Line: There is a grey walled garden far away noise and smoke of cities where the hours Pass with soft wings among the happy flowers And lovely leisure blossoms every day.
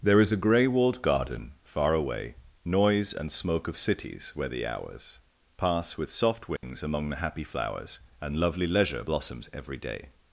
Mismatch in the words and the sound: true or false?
true